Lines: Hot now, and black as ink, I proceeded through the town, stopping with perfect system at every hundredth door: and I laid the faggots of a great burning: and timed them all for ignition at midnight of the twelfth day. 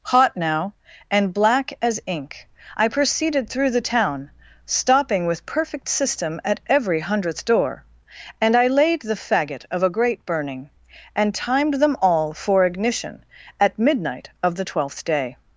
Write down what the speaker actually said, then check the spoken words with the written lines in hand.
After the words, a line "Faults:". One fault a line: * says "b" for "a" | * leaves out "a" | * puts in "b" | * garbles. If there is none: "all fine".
Hot now, and black as ink, I proceeded through the town, stopping with perfect system at every hundredth door: and I laid the faggot of a great burning: and timed them all for ignition at midnight of the twelfth day.
Faults:
* says "faggot" for "faggots"